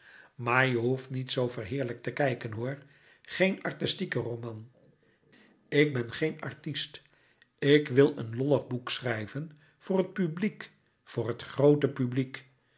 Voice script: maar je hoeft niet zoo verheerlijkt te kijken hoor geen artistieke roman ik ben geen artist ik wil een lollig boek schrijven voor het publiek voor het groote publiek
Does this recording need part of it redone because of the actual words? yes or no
no